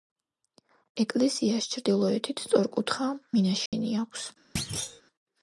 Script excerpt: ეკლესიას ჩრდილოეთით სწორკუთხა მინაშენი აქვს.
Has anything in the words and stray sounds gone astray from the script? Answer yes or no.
yes